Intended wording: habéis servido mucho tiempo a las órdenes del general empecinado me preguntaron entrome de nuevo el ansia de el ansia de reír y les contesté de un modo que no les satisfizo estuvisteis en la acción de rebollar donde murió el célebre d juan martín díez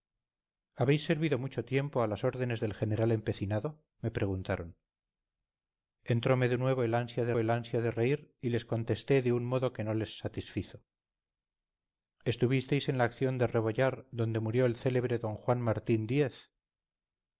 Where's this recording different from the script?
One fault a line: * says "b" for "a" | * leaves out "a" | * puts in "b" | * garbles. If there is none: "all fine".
all fine